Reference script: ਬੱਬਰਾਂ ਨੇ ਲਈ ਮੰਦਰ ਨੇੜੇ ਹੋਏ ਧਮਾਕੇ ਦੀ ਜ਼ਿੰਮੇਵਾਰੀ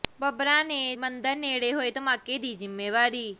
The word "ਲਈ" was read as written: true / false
false